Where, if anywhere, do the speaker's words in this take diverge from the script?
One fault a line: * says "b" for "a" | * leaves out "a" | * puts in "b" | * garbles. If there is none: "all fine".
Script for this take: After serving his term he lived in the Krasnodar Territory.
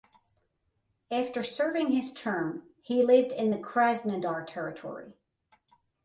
all fine